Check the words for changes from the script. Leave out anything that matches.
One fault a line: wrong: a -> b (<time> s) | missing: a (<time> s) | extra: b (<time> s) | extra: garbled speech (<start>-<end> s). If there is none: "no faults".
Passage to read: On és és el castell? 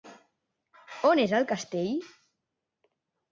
missing: és (1.3 s)